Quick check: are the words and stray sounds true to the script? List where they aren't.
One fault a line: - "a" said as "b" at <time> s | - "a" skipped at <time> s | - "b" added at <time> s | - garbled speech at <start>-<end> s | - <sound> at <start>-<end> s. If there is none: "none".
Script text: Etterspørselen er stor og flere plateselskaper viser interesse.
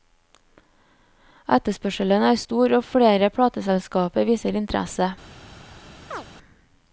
- chirp at 6.1-6.3 s